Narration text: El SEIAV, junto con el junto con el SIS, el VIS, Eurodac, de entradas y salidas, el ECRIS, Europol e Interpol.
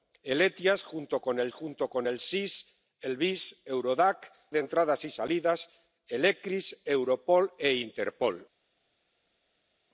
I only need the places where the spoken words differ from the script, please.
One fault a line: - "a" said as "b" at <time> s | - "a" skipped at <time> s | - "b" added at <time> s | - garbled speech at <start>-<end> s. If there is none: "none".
none